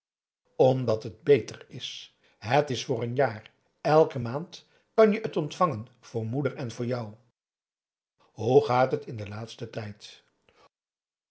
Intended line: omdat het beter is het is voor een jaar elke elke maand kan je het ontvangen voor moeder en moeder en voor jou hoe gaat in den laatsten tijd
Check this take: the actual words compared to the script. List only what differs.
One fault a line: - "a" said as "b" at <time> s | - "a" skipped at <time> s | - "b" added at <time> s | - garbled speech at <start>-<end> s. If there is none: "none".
- "elke" skipped at 4.2 s
- "moeder en" skipped at 6.7 s
- "het" added at 8.9 s